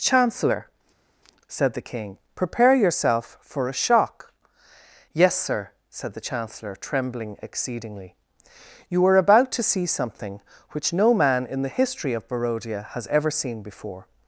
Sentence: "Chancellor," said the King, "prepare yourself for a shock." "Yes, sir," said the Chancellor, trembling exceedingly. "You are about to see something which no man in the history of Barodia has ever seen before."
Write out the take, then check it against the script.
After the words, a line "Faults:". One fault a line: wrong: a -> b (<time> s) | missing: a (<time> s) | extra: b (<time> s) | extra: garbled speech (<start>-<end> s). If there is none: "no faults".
"Chancellor," said the King, "prepare yourself for a shock." "Yes, sir," said the Chancellor, trembling exceedingly. "You are about to see something which no man in the history of Barodia has ever seen before."
Faults:
no faults